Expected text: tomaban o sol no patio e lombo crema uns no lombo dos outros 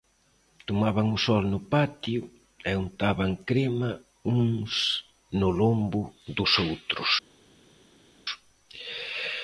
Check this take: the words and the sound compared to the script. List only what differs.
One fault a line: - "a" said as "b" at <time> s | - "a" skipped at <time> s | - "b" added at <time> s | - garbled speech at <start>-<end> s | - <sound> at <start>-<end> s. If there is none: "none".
- "lombo" said as "untaban" at 2.8 s